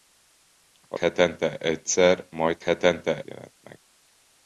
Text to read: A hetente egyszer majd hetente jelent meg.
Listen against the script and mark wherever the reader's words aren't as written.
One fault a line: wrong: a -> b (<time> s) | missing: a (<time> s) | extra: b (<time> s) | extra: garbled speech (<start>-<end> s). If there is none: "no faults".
no faults